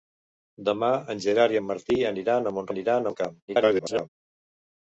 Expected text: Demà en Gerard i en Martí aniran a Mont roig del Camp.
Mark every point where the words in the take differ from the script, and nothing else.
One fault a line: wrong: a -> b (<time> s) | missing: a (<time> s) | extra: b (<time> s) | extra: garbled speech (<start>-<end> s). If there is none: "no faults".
wrong: roig -> aniran (2.7 s)
extra: garbled speech (3.5-4.1 s)